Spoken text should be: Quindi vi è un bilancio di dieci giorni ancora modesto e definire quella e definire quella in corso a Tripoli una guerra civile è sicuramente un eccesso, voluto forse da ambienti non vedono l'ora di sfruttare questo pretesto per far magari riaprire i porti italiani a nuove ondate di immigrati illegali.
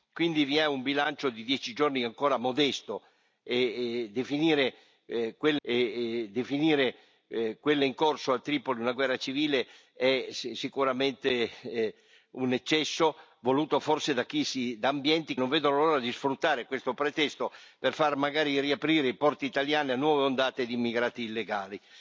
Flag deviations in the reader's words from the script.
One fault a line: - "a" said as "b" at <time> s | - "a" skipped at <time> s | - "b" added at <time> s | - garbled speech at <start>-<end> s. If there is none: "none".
none